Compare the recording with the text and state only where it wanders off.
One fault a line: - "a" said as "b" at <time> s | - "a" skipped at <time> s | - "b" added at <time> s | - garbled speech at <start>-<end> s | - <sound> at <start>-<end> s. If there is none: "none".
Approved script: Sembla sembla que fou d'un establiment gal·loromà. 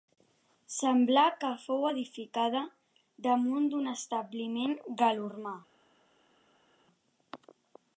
- "sembla" skipped at 1.2 s
- "edificada damunt" added at 1.9 s